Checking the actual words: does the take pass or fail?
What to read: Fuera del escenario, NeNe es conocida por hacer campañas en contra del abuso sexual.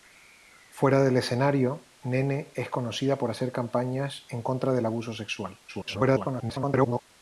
fail